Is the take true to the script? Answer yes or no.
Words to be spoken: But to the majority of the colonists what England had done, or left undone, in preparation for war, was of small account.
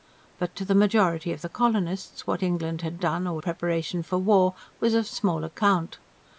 no